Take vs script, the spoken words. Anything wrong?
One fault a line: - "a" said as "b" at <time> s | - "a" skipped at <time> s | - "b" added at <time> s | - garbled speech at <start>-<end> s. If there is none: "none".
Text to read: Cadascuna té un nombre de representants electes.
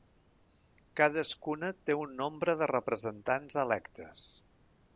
none